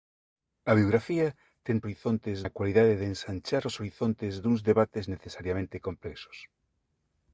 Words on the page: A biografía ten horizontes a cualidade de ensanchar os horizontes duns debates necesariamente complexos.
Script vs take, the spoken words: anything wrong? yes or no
no